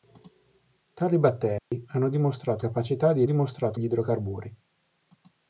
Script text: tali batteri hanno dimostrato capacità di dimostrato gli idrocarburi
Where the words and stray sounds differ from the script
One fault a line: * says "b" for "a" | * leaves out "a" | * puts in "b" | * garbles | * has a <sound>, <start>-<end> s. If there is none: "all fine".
* has a dropout, 1.6-1.7 s